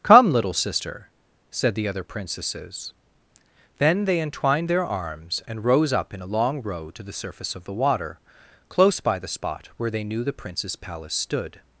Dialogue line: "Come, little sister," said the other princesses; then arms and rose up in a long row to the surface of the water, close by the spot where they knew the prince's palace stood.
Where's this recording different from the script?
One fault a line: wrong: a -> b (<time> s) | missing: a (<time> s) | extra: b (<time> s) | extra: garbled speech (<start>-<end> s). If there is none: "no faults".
extra: they entwined their (4.0 s)